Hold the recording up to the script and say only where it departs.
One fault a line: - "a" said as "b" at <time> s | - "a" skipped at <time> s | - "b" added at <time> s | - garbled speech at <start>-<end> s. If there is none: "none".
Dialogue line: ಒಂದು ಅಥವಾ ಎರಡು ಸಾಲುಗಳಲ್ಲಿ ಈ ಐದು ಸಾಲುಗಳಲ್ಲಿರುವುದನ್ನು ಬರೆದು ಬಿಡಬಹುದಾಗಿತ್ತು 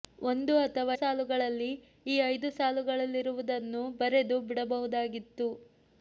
- "ಎರಡು" skipped at 0.9 s